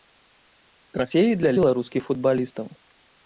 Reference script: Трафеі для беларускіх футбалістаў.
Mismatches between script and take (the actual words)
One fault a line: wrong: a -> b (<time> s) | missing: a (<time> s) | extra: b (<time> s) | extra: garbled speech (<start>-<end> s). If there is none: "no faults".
no faults